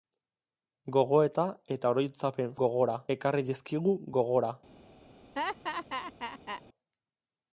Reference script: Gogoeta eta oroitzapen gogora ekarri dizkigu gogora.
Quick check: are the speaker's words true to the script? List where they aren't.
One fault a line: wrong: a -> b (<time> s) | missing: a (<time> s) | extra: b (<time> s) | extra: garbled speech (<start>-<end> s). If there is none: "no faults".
no faults